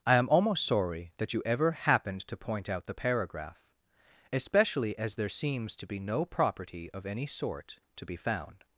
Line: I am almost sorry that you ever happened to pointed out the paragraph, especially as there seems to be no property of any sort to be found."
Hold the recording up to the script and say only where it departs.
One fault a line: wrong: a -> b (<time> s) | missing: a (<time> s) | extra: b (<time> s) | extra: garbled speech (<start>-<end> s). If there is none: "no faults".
wrong: pointed -> point (2.4 s)